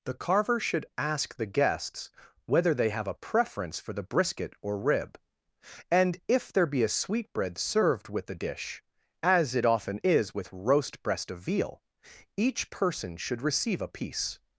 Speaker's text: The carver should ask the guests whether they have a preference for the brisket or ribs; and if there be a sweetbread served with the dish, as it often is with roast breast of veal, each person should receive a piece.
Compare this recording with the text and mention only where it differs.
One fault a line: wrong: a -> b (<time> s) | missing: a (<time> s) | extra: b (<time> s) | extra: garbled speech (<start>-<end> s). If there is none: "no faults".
wrong: ribs -> rib (4.8 s)